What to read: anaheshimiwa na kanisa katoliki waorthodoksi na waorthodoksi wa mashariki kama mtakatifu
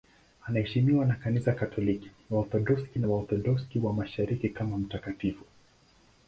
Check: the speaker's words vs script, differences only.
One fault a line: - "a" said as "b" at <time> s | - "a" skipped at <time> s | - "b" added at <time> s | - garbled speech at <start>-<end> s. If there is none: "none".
none